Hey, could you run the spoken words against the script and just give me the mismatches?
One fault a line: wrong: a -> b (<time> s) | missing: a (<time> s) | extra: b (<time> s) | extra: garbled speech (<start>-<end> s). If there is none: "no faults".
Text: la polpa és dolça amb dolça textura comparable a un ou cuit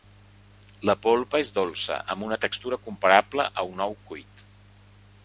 wrong: dolça -> una (2.3 s)